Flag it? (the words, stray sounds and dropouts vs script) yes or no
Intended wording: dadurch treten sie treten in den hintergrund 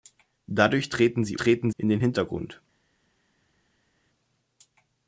no